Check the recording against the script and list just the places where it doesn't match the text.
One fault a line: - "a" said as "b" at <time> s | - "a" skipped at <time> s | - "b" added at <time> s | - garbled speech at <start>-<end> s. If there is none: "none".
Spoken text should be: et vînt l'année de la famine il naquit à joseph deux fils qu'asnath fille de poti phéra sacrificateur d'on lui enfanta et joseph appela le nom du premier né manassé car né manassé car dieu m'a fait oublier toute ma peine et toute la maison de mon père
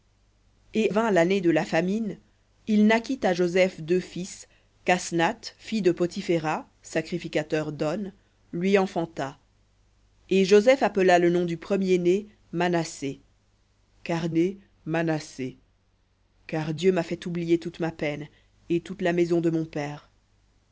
none